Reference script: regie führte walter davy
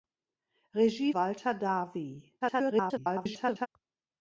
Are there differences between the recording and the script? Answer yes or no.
yes